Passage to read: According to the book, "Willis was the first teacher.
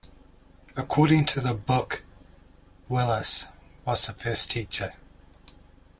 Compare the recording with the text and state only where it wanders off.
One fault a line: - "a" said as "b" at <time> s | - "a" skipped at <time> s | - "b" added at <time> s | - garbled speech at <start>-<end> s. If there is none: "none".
none